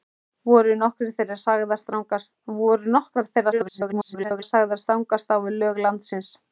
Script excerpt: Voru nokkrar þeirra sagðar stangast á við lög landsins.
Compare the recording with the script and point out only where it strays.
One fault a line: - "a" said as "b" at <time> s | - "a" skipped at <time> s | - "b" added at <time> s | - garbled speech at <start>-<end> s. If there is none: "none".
- garbled speech at 3.5-4.4 s